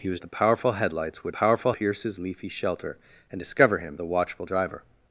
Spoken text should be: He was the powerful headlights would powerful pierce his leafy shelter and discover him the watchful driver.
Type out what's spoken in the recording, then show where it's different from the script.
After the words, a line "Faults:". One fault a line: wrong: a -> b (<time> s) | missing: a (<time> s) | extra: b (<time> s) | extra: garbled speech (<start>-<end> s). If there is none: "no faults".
He was the powerful headlights would powerful pierce his leafy shelter and discover him the watchful driver.
Faults:
no faults